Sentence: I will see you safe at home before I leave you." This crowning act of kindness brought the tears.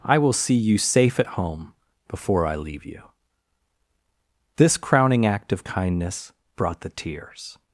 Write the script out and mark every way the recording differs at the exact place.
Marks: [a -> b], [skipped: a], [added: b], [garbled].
I will see you safe at home before I leave you." This crowning act of kindness brought the tears.